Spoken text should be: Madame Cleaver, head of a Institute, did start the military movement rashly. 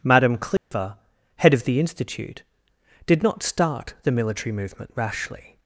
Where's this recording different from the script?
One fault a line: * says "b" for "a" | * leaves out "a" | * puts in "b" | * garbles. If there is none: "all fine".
* says "the" for "a"
* puts in "not"